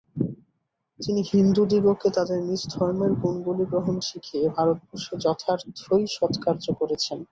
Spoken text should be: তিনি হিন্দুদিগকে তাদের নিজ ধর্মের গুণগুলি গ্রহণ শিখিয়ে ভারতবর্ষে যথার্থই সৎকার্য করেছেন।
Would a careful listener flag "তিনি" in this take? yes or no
no